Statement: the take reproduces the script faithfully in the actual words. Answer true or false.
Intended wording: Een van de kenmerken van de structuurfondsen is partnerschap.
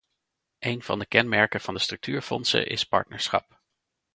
true